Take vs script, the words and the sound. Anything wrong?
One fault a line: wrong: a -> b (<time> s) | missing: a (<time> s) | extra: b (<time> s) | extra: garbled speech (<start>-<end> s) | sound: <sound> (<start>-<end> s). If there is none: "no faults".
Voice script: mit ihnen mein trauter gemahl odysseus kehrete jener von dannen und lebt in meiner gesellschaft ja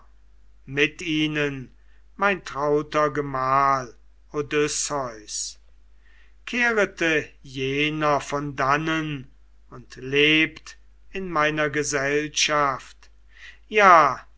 no faults